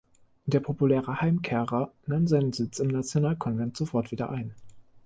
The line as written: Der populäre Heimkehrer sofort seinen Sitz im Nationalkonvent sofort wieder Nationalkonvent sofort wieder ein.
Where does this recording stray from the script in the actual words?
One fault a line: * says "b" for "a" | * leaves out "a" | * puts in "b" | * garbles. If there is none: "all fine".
* says "nahm" for "sofort"
* leaves out "Nationalkonvent sofort wieder"